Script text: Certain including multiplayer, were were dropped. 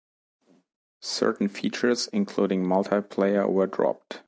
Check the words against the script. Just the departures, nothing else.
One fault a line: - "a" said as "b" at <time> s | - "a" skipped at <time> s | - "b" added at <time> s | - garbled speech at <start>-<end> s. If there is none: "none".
- "features" added at 1.5 s
- "were" skipped at 3.7 s